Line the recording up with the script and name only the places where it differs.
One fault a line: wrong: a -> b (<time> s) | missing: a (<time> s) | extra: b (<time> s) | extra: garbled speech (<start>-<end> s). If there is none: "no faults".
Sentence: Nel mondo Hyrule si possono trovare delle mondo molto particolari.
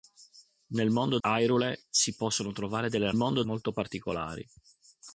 no faults